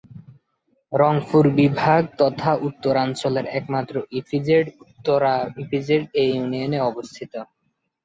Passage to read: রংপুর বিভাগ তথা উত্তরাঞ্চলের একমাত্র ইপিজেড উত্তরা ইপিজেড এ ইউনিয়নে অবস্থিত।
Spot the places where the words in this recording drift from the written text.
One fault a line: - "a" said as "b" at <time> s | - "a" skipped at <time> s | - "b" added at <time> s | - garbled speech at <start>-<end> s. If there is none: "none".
none